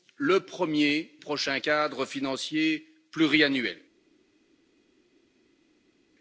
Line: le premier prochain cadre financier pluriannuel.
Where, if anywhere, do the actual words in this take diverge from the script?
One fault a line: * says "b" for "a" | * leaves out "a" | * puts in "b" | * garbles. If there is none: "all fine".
all fine